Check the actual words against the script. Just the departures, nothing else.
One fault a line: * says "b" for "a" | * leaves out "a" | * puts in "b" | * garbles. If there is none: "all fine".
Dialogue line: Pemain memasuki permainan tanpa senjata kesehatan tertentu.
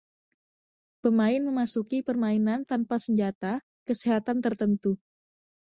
all fine